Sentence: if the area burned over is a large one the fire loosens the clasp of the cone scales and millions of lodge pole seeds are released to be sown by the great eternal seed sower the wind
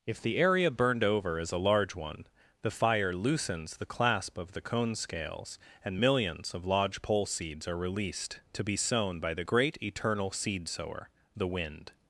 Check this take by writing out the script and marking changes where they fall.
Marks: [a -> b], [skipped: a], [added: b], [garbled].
if the area burned over is a large one the fire loosens the clasp of the cone scales and millions of lodge pole seeds are released to be sown by the great eternal seed sower the wind